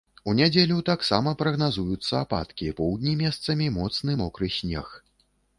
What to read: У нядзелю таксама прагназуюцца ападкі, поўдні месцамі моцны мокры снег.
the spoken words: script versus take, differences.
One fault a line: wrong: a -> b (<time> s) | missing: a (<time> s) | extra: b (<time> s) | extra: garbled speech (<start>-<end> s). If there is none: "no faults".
no faults